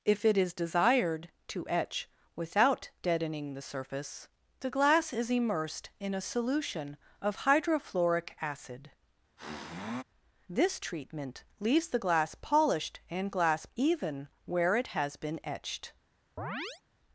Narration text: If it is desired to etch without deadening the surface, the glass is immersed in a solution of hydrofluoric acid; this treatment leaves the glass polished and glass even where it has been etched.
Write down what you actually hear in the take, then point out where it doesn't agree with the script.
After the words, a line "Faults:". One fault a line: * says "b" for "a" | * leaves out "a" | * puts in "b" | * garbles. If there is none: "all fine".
If it is desired to etch without deadening the surface, the glass is immersed in a solution of hydrofluoric acid; this treatment leaves the glass polished and glass even where it has been etched.
Faults:
all fine